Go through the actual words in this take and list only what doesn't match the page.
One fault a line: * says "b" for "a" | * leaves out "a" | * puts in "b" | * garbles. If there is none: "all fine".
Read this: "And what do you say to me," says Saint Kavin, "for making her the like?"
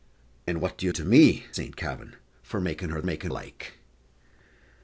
* leaves out "say"
* leaves out "says"
* says "making" for "the"